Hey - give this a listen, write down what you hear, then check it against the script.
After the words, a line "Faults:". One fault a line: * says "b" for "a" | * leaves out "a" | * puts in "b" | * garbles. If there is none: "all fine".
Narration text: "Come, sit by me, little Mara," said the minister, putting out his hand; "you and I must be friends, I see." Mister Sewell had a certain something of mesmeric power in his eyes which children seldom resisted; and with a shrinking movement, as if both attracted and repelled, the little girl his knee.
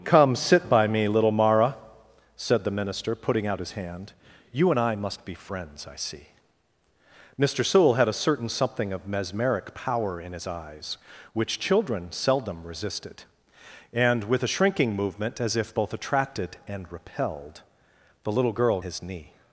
"Come, sit by me, little Mara," said the minister, putting out his hand; "you and I must be friends, I see." Mister Sewell had a certain something of mesmeric power in his eyes which children seldom resisted; and with a shrinking movement, as if both attracted and repelled, the little girl his knee.
Faults:
all fine